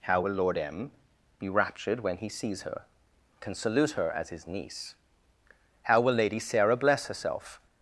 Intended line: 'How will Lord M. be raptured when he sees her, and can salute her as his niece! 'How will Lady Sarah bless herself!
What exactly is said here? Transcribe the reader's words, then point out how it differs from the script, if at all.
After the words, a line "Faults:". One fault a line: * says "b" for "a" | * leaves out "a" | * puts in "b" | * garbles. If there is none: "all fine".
'How will Lord M. be raptured when he sees her, can salute her as his niece! 'How will Lady Sarah bless herself!
Faults:
* leaves out "and"